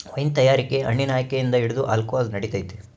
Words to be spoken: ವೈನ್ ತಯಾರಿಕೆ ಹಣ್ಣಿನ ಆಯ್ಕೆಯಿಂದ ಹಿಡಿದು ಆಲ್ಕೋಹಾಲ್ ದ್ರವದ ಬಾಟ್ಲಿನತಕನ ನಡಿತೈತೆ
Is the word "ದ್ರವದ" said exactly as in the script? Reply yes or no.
no